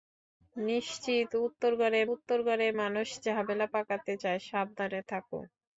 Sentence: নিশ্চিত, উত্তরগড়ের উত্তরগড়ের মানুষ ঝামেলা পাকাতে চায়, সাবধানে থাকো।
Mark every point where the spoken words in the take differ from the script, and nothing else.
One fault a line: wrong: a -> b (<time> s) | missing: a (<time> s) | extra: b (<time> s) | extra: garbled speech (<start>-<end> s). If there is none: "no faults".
no faults